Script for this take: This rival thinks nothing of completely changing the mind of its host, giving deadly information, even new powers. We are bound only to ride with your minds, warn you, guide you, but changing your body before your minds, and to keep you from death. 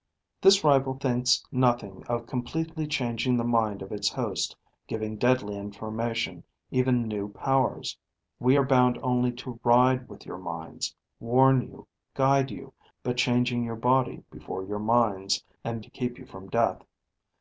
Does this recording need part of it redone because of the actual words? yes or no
no